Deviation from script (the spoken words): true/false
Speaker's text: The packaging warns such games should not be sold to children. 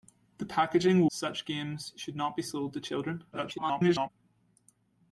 true